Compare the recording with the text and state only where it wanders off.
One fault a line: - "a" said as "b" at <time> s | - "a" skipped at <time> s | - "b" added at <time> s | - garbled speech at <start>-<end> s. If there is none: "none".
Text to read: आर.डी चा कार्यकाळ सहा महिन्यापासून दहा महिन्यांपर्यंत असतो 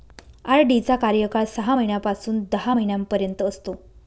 none